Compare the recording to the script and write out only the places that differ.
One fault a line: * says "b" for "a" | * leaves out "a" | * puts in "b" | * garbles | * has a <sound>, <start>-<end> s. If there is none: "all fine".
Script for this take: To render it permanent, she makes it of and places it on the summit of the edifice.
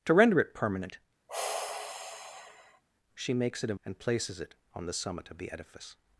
* has a sigh, 1.3-2.8 s